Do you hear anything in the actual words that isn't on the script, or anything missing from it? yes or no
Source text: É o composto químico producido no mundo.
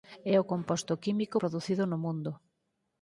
no